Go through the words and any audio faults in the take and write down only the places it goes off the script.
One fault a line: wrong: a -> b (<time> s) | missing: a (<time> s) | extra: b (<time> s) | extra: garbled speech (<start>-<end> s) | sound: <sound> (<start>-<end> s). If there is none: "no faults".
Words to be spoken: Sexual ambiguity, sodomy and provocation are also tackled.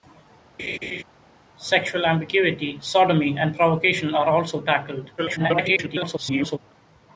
sound: laugh (0.6-1.0 s)
extra: garbled speech (5.2-6.6 s)